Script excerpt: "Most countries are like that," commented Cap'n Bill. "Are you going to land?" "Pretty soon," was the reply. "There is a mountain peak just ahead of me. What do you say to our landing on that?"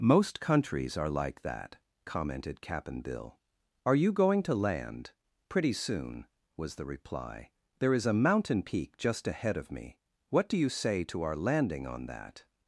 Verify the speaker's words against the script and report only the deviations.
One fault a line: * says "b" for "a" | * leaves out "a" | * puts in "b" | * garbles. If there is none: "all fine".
all fine